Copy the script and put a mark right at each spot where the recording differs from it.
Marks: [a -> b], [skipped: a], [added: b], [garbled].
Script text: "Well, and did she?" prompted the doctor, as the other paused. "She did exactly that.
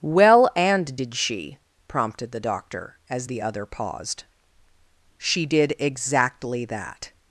"Well, and did she?" prompted the doctor, as the other paused. "She did exactly that.